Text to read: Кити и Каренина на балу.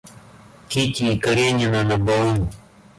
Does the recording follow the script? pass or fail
pass